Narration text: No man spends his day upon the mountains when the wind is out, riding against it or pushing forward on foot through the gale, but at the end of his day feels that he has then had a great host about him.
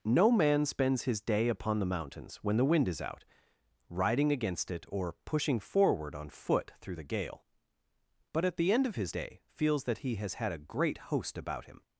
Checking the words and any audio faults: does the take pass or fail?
fail